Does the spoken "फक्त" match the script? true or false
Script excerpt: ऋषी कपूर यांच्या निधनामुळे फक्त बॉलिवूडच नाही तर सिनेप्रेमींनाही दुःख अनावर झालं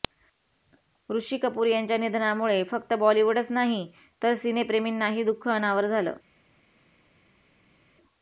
true